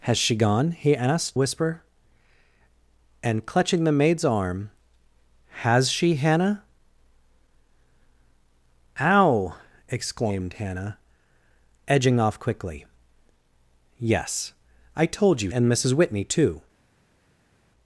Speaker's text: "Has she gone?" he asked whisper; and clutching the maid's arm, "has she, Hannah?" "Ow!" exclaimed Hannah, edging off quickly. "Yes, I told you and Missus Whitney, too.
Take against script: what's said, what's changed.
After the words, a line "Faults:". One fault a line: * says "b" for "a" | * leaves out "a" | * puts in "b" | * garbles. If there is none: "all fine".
"Has she gone?" he asked whisper; and clutching the maid's arm, "has she, Hannah?" "Ow!" exclaimed Hannah, edging off quickly. "Yes, I told you and Missus Whitney, too.
Faults:
all fine